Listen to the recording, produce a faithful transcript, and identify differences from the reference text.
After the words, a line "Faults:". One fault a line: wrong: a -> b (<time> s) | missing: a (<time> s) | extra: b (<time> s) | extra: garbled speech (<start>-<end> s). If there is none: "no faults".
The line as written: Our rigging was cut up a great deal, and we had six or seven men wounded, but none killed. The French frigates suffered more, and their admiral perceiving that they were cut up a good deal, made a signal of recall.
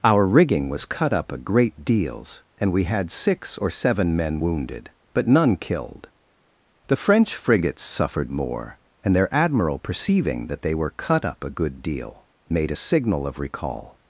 Our rigging was cut up a great deals, and we had six or seven men wounded, but none killed. The French frigates suffered more, and their admiral perceiving that they were cut up a good deal, made a signal of recall.
Faults:
wrong: deal -> deals (1.9 s)